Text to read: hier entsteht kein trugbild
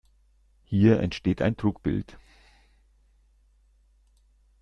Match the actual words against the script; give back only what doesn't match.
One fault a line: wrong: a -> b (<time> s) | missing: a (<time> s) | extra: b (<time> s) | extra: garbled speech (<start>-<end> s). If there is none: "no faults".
wrong: kein -> ein (1.4 s)